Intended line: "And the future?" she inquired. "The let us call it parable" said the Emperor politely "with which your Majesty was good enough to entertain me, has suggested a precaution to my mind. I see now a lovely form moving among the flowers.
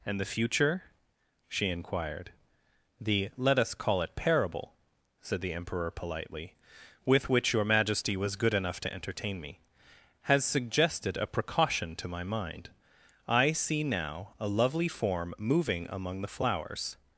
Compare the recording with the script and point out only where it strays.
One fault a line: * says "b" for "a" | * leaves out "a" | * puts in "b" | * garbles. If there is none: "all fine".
all fine